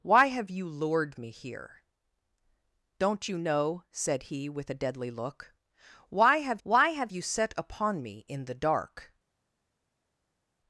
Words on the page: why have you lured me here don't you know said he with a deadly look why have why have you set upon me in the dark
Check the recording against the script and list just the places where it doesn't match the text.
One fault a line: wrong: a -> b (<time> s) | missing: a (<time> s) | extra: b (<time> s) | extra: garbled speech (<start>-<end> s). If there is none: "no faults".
no faults